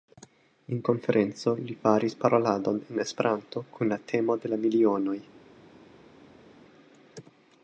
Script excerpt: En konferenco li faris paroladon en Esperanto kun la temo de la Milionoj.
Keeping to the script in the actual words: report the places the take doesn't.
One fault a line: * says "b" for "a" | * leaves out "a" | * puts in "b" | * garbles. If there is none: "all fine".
all fine